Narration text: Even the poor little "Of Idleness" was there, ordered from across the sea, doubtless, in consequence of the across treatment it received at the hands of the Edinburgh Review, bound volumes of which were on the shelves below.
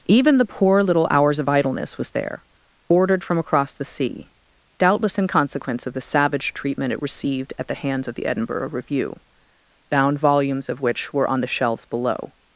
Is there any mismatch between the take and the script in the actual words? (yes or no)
yes